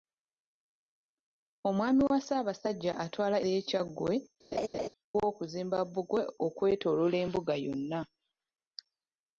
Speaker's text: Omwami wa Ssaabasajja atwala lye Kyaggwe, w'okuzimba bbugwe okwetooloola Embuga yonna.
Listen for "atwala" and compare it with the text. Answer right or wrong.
right